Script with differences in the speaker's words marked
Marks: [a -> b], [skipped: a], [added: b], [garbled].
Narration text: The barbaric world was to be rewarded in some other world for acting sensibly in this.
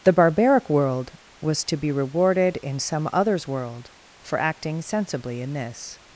The barbaric world was to be rewarded in some [other -> others] world for acting sensibly in this.